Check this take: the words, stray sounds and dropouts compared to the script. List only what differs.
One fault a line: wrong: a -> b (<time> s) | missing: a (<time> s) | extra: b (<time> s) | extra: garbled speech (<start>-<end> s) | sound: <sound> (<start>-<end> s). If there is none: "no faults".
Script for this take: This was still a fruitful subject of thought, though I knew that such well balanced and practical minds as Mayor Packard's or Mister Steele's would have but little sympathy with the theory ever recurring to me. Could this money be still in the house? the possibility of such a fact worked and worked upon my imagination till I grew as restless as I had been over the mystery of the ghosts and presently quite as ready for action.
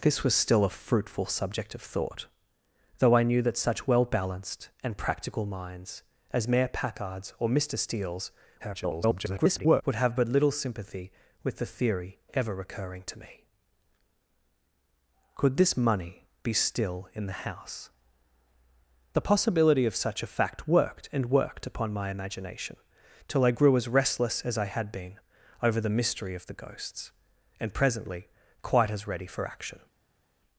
extra: garbled speech (8.6-9.8 s)